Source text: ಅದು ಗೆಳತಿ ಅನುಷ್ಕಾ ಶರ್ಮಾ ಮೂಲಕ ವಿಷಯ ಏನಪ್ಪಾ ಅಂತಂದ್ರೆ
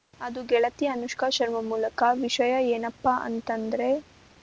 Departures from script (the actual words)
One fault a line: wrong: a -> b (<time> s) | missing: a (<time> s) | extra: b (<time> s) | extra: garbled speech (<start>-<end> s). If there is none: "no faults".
no faults